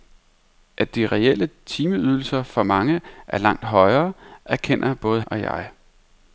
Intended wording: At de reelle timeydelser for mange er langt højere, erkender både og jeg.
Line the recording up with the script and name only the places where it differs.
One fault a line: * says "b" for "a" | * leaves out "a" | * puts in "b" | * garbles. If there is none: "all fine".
all fine